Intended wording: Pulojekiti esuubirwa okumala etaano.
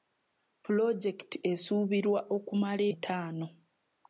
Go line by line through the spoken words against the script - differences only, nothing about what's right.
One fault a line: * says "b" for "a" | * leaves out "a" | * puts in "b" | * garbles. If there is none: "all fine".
all fine